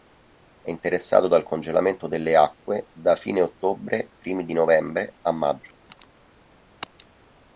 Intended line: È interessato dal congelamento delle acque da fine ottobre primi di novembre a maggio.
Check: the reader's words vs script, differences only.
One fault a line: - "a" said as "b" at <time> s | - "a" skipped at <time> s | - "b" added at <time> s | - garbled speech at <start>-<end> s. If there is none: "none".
none